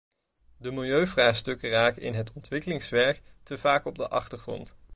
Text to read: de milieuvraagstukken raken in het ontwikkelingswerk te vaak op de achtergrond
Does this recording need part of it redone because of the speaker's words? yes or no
no